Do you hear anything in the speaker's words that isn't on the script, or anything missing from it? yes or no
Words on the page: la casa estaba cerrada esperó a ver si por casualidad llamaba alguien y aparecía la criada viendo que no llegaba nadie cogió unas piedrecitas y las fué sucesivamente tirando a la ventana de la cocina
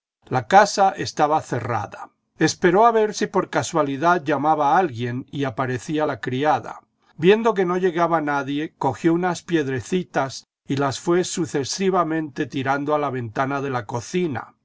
no